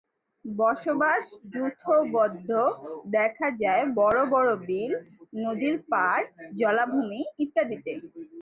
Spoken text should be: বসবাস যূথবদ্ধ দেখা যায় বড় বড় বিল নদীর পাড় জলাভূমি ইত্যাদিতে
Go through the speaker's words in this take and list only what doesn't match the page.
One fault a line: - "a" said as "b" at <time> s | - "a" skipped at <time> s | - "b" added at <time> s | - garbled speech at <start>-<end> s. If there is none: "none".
none